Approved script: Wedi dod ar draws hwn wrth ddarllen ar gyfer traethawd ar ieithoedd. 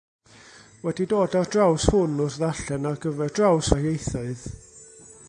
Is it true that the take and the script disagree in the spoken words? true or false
true